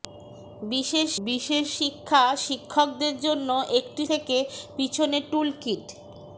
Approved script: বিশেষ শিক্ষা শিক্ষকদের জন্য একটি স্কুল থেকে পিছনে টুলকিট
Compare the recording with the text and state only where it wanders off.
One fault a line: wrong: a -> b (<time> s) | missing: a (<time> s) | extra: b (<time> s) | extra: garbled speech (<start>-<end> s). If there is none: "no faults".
extra: বিশেষ (1.3 s)
missing: স্কুল (4.0 s)